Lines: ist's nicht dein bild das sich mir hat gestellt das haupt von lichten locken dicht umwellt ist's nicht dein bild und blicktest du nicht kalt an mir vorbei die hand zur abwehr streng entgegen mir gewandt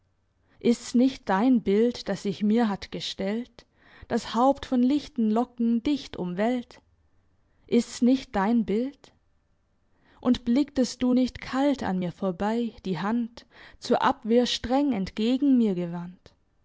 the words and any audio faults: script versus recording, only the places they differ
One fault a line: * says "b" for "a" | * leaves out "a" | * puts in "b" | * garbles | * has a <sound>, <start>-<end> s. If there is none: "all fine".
all fine